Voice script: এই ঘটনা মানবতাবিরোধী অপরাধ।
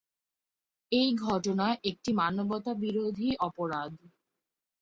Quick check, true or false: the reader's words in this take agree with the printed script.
false